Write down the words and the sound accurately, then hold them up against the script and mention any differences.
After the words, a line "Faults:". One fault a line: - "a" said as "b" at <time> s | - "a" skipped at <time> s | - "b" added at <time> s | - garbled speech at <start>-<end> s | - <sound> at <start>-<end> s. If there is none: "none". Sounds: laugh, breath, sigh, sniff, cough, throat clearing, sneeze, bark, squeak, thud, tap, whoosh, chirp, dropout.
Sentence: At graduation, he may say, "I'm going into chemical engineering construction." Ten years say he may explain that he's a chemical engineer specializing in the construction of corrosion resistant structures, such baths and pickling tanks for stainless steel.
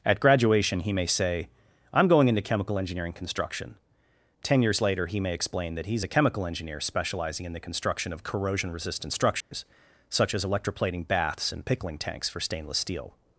At graduation, he may say, "I'm going into chemical engineering construction." Ten years later he may explain that he's a chemical engineer specializing in the construction of corrosion resistant structures, such as electroplating baths and pickling tanks for stainless steel.
Faults:
- "say" said as "later" at 4.8 s
- dropout at 9.4-9.5 s
- "as electroplating" added at 10.3 s